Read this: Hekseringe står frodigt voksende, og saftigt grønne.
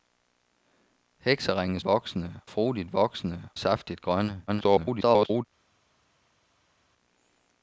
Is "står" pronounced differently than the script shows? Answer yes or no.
yes